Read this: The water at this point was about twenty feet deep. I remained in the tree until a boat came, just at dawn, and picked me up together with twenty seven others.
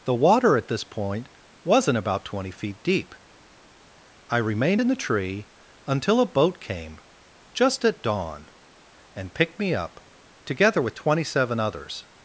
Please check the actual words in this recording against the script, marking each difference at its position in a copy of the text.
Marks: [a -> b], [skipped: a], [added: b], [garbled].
The water at this point [was -> wasn't] about twenty feet deep. I remained in the tree until a boat came, just at dawn, and picked me up together with twenty seven others.